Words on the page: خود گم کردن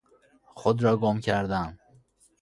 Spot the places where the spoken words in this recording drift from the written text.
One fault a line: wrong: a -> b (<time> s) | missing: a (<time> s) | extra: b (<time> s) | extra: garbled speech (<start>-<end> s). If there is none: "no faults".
extra: را (0.8 s)